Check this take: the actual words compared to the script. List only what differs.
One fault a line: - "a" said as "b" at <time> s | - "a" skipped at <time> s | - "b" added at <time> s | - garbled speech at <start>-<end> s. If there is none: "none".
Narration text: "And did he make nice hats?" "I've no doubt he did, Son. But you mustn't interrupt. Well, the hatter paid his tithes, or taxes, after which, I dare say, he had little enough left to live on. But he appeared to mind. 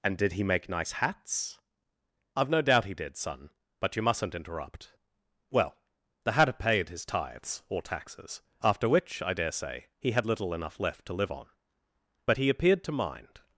none